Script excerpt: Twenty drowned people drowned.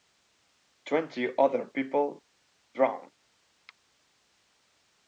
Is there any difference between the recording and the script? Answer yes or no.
yes